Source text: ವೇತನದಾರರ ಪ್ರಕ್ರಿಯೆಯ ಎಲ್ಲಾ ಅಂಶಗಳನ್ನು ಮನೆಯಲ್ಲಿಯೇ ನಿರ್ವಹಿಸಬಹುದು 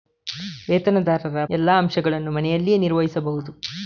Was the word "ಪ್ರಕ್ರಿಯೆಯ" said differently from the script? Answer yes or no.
yes